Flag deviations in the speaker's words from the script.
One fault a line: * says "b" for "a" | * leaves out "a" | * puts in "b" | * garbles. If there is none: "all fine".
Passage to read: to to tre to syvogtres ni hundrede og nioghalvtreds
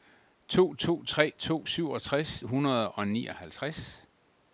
* leaves out "ni"